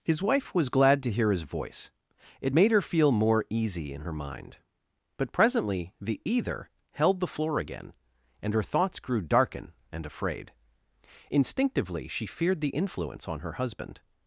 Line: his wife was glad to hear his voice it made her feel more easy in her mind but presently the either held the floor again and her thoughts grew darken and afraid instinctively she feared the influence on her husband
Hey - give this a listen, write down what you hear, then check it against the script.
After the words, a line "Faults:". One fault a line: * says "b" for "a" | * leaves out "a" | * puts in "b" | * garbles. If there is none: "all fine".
his wife was glad to hear his voice it made her feel more easy in her mind but presently the either held the floor again and her thoughts grew darken and afraid instinctively she feared the influence on her husband
Faults:
all fine